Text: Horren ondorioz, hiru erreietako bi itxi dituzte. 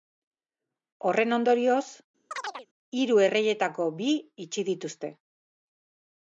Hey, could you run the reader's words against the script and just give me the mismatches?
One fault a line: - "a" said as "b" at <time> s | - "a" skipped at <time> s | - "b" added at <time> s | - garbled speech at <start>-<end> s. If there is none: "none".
none